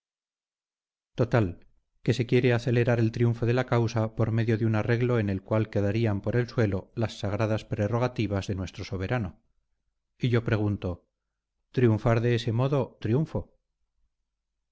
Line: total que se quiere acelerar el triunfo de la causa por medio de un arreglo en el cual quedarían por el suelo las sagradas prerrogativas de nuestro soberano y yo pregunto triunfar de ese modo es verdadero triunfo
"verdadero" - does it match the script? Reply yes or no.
no